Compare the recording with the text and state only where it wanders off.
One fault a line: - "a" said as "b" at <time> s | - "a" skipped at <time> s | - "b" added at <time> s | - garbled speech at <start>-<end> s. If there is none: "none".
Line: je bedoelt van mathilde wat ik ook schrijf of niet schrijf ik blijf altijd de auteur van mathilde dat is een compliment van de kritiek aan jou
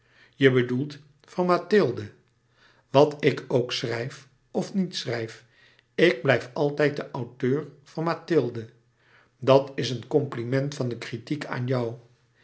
none